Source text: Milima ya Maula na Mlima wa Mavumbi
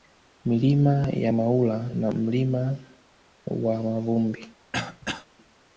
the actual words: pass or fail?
pass